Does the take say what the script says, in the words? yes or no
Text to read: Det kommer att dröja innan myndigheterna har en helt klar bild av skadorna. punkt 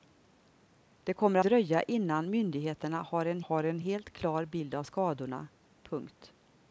no